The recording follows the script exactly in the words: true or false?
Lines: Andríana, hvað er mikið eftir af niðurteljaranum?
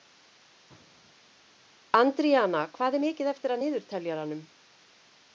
true